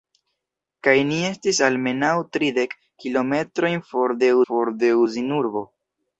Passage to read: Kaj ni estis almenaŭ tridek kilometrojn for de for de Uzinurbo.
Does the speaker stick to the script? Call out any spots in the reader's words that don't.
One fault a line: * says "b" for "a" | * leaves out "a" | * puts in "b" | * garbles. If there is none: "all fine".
all fine